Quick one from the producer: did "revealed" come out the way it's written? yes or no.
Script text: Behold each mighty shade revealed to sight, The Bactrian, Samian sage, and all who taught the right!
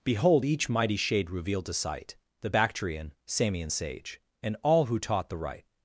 yes